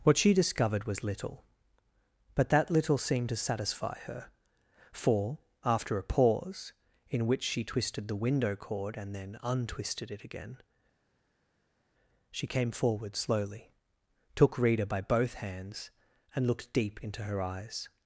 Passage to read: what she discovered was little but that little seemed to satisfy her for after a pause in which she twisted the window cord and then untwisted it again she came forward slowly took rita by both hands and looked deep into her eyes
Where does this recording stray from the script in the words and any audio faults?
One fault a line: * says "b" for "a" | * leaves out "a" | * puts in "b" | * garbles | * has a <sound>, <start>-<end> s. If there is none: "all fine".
all fine